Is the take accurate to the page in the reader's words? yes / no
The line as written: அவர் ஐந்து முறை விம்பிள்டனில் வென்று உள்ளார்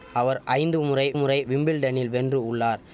no